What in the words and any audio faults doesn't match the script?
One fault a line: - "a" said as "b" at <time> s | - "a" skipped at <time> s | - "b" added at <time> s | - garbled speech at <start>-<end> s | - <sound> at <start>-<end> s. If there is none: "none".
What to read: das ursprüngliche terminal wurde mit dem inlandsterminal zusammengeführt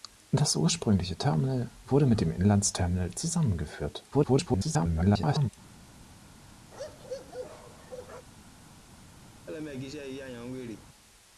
- garbled speech at 4.1-5.5 s
- bark at 6.7-8.3 s
- laugh at 9.5-10.9 s